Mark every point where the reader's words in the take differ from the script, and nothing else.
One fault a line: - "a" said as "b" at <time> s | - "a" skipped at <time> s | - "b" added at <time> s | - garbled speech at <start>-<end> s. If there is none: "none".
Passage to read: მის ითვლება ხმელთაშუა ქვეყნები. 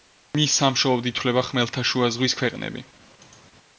- "სამშობლოდ" added at 0.6 s
- "ზღვის" added at 2.2 s